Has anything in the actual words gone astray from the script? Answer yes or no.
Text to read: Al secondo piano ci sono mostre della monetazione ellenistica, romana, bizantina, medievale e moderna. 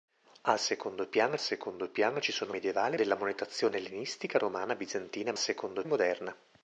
yes